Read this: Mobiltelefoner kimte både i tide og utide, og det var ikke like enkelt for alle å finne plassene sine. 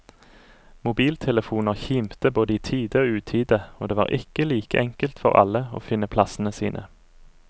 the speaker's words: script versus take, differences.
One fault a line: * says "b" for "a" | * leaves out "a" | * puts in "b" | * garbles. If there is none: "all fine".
all fine